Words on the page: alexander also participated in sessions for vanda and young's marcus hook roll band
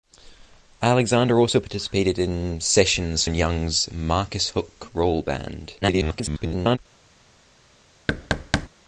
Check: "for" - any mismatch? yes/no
yes